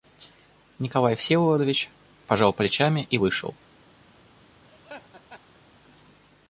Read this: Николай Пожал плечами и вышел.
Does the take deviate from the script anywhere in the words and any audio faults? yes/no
yes